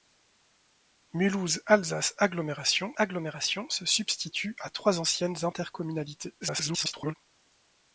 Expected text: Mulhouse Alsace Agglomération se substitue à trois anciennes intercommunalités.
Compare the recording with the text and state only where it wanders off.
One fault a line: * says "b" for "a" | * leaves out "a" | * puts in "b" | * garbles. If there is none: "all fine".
* puts in "Agglomération"
* garbles